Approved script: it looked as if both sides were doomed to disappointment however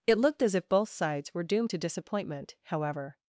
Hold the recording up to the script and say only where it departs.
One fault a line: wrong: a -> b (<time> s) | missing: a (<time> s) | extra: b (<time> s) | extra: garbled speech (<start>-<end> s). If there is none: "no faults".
no faults